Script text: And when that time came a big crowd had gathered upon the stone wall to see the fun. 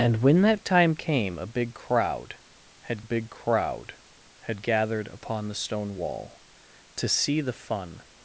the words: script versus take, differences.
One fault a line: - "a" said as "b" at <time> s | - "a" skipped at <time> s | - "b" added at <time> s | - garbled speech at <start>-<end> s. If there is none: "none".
- "big crowd had" added at 3.0 s